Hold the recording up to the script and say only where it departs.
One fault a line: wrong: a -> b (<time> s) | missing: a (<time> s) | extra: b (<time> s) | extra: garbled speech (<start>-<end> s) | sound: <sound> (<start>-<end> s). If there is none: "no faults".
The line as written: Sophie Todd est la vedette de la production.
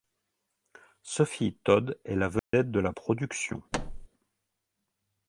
sound: dropout (2.4-2.5 s)
sound: thud (3.7-4.1 s)